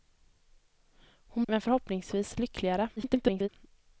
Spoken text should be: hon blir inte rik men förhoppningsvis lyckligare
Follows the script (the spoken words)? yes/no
no